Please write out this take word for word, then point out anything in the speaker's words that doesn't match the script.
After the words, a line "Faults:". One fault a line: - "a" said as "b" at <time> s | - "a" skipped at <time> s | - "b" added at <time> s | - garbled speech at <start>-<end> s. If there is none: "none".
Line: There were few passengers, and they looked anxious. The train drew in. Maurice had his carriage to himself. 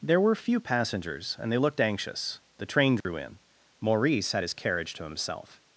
There were few passengers, and they looked anxious. The train drew in. Maurice had his carriage to himself.
Faults:
none